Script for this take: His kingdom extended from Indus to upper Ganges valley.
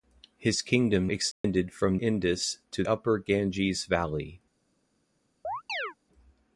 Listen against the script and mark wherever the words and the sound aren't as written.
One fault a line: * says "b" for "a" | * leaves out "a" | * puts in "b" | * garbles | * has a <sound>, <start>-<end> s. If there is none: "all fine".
* has a dropout, 1.3-1.4 s
* has a chirp, 5.4-5.9 s